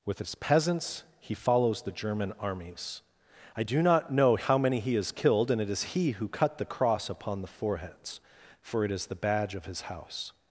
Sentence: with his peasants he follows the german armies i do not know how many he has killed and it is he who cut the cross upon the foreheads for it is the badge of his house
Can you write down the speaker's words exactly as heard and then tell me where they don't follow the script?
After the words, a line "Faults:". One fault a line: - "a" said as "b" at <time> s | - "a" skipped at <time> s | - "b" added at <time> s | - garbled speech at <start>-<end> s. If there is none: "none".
with his peasants he follows the german armies i do not know how many he has killed and it is he who cut the cross upon the foreheads for it is the badge of his house
Faults:
none